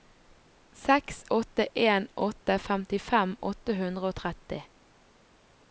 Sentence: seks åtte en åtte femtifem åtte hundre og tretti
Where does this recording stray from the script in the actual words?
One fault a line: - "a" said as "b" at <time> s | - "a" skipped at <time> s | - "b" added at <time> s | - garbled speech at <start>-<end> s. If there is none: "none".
none